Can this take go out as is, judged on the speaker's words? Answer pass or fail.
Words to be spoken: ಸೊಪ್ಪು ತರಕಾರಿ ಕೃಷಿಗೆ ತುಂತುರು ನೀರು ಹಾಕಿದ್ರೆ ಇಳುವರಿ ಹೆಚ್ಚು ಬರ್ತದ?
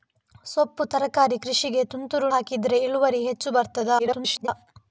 fail